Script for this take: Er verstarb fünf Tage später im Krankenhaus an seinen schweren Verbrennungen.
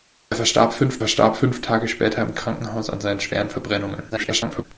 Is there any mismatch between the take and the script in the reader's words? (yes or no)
yes